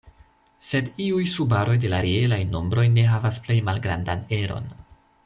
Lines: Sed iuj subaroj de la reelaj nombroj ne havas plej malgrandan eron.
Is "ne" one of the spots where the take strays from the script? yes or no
no